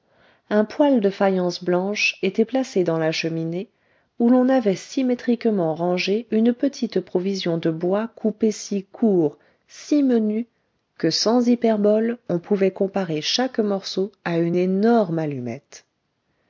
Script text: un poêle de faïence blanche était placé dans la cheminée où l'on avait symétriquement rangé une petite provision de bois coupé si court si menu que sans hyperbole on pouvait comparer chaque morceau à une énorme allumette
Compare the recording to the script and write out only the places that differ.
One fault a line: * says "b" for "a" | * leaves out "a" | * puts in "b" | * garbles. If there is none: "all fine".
all fine